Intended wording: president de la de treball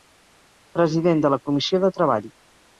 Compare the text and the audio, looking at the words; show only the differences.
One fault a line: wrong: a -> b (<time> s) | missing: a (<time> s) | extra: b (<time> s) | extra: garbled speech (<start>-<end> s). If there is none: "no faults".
extra: comissió (1.5 s)